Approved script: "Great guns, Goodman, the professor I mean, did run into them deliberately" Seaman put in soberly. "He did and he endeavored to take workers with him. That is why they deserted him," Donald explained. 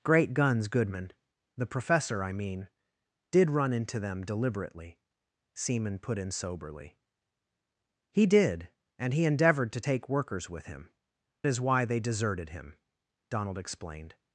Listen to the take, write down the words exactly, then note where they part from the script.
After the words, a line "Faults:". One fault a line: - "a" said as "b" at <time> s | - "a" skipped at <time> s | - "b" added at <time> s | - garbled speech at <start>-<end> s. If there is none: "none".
"Great guns, Goodman, the professor I mean, did run into them deliberately" Seaman put in soberly. "He did and he endeavored to take workers with him. Is why they deserted him," Donald explained.
Faults:
- "That" skipped at 10.9 s